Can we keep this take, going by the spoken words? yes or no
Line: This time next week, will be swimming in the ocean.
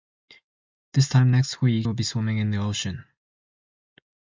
yes